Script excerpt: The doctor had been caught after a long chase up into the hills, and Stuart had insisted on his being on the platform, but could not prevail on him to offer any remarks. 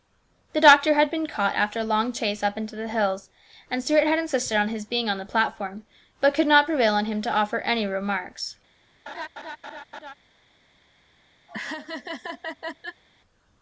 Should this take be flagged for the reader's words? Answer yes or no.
no